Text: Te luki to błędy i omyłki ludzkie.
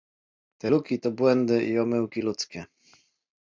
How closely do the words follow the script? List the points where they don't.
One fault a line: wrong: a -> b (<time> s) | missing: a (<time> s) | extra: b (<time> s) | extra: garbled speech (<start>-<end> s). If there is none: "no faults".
no faults